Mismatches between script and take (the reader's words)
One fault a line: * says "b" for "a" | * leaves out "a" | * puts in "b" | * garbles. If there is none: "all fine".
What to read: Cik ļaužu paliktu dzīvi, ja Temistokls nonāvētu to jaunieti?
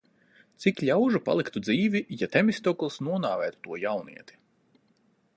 all fine